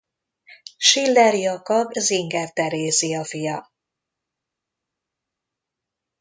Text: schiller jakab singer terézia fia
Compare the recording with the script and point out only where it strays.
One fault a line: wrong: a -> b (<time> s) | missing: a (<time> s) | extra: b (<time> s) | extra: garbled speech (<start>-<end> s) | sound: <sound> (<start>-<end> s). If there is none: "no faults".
no faults